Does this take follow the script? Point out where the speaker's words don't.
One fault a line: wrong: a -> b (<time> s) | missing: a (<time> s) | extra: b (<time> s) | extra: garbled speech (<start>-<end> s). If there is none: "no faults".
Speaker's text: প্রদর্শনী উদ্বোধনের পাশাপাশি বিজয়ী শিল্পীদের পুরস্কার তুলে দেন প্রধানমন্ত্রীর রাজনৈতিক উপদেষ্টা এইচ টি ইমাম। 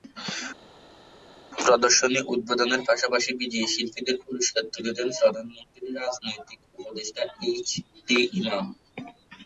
no faults